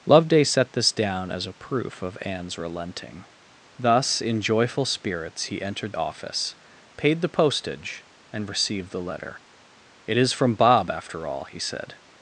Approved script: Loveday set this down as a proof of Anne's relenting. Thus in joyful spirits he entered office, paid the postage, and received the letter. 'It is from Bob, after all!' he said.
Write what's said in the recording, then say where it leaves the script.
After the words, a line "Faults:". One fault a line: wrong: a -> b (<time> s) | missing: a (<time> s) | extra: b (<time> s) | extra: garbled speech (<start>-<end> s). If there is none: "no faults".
Loveday set this down as a proof of Anne's relenting. Thus in joyful spirits he entered office, paid the postage, and received the letter. 'It is from Bob, after all!' he said.
Faults:
no faults